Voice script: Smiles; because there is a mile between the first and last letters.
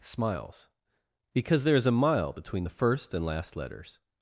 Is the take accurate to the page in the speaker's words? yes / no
yes